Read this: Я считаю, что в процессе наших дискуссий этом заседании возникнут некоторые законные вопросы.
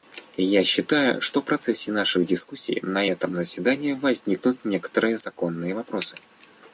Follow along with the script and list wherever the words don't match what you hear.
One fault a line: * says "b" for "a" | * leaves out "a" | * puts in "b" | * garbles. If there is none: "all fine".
* puts in "на"